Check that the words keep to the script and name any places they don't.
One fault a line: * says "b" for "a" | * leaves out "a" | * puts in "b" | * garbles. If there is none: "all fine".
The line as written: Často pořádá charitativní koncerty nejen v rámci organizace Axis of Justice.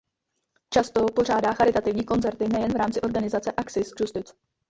* leaves out "of"